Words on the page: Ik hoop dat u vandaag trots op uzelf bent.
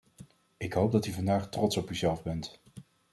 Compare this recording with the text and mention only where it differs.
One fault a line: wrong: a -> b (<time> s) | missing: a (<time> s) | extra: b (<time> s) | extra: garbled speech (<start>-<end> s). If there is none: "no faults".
no faults